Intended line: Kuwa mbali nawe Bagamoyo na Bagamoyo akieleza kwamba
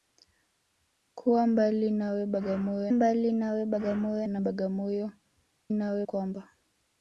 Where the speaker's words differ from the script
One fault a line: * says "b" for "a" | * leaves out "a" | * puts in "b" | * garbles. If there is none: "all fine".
* puts in "mbali nawe Bagamoyo"
* says "nawe" for "akieleza"